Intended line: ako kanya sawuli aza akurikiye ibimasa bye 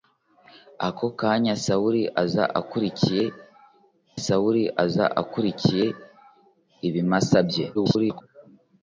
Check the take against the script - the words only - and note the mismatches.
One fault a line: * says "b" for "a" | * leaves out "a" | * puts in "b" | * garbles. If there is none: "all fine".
* puts in "sawuli aza akurikiye"
* garbles